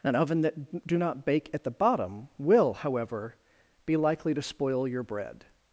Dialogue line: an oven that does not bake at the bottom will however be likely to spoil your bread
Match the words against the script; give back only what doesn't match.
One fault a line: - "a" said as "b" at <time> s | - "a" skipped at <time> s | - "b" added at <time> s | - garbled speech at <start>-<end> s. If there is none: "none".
- "does" said as "do" at 0.9 s